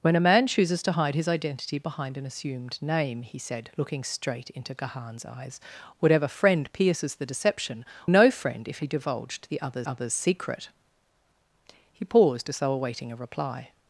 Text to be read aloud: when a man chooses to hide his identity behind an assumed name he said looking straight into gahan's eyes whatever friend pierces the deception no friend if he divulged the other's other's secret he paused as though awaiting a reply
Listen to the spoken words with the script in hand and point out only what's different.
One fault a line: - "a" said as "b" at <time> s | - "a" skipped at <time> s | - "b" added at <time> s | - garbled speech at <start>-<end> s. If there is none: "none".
none